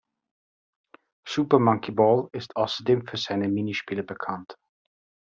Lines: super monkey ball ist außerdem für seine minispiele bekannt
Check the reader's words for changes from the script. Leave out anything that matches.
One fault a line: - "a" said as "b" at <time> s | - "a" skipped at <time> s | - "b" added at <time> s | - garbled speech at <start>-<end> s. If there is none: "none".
none